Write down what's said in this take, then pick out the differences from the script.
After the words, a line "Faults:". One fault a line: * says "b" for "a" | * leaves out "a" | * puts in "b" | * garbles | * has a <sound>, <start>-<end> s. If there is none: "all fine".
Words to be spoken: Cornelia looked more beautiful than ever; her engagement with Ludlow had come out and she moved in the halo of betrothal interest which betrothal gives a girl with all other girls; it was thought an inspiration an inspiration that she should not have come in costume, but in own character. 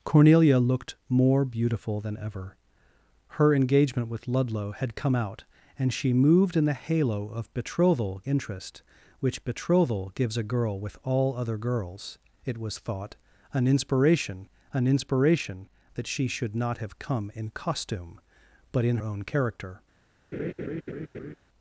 Cornelia looked more beautiful than ever; her engagement with Ludlow had come out and she moved in the halo of betrothal interest which betrothal gives a girl with all other girls; it was thought an inspiration an inspiration that she should not have come in costume, but in own character.
Faults:
* has a laugh, 20.3-21.4 s